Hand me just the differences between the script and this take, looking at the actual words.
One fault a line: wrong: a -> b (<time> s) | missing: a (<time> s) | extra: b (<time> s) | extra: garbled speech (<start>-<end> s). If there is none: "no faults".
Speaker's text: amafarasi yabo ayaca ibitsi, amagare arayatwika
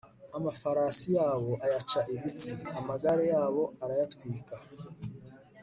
extra: yabo (3.3 s)